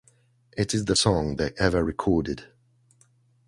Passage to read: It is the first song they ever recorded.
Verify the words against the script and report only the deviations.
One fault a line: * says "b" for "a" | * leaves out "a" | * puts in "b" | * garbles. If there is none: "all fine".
* leaves out "first"